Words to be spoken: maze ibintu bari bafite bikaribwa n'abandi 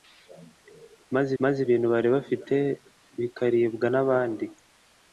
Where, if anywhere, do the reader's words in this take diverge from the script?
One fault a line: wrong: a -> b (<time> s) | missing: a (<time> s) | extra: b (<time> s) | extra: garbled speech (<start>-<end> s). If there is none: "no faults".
extra: maze (1.4 s)